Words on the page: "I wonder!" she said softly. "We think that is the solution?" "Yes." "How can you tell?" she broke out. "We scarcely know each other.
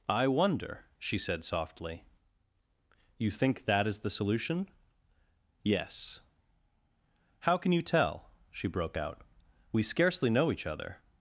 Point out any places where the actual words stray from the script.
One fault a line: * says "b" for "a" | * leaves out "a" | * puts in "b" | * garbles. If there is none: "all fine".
* says "You" for "We"